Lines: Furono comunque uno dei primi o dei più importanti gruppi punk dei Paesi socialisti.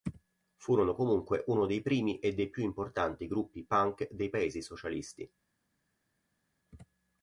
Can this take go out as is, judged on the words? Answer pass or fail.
fail